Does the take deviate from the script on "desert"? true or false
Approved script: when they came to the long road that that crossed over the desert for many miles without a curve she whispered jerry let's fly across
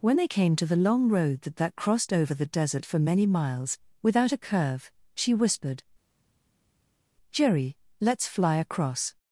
false